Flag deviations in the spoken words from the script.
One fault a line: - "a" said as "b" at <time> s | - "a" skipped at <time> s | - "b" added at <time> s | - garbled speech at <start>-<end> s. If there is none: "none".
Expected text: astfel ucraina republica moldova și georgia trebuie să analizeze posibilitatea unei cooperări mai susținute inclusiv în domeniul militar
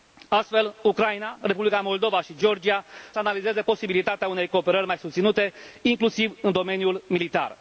- "trebuie" skipped at 2.8 s